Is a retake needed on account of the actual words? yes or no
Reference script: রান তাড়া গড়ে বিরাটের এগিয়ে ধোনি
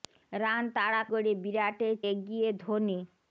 no